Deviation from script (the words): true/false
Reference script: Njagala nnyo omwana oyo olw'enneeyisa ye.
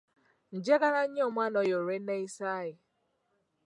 false